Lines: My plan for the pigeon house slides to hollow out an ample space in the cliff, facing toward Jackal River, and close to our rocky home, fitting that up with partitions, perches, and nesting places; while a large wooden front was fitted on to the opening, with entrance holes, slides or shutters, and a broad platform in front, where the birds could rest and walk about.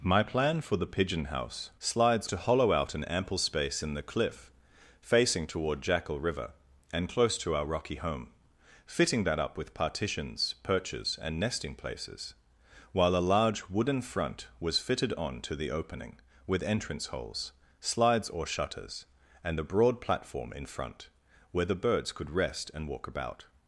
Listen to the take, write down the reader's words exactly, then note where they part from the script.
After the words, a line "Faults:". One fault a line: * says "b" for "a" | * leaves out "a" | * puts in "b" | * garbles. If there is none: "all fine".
My plan for the pigeon house slides to hollow out an ample space in the cliff, facing toward Jackal River, and close to our rocky home, fitting that up with partitions, perches, and nesting places; while a large wooden front was fitted on to the opening, with entrance holes, slides or shutters, and a broad platform in front, where the birds could rest and walk about.
Faults:
all fine